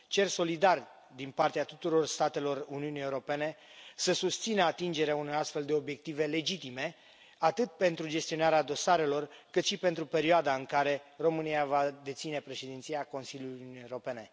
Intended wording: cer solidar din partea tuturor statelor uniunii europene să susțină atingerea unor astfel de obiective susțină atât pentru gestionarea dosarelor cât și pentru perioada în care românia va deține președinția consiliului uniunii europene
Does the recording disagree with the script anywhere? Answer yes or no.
yes